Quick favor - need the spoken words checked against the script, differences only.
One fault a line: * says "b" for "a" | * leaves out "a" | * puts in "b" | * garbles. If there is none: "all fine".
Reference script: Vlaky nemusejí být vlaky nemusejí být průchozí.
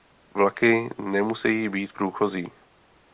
* leaves out "vlaky nemusejí být"